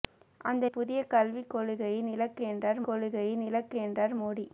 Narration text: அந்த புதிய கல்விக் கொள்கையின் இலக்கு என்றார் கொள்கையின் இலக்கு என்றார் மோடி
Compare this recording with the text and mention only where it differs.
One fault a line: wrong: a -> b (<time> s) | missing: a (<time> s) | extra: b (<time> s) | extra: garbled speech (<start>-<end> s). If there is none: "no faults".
no faults